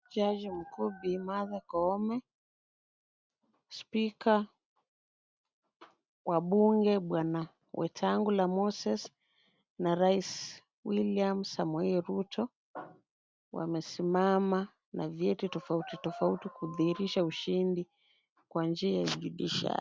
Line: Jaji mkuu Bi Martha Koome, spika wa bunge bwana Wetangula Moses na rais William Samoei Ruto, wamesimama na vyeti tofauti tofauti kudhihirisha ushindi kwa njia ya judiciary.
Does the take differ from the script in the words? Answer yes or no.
no